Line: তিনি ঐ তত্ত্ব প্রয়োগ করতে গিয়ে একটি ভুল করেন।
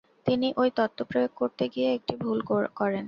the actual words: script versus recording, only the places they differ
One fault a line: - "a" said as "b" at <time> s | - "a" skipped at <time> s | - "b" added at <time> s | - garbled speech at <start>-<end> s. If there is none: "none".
none